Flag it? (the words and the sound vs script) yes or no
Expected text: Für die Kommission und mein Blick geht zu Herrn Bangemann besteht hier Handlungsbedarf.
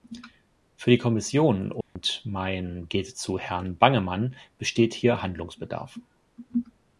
yes